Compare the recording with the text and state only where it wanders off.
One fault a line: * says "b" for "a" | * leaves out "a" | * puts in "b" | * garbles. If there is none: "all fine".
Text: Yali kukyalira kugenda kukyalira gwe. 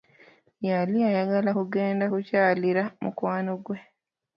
* says "ayagala" for "kukyalira"
* puts in "mukwano"